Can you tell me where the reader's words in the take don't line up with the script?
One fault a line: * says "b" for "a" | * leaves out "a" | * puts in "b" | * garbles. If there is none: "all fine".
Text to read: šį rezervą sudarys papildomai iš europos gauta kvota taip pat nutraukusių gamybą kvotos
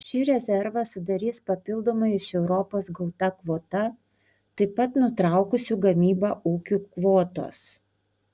* puts in "ūkių"